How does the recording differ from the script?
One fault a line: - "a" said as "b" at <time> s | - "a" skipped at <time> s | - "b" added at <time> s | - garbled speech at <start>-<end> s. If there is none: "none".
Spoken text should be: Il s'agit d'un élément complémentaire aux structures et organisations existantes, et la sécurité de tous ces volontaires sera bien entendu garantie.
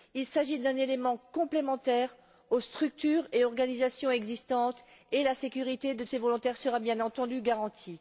- "tous" skipped at 6.0 s